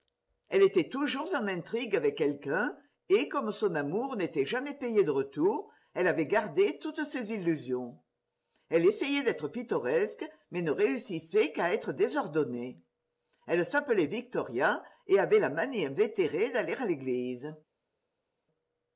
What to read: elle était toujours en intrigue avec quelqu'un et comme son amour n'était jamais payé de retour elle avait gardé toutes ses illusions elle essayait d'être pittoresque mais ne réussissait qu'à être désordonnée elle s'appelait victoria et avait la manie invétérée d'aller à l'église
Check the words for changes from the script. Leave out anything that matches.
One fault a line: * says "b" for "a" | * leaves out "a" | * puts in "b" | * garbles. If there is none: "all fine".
all fine